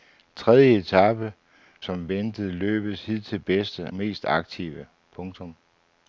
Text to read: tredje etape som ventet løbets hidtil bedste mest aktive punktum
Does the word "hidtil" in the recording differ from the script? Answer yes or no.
no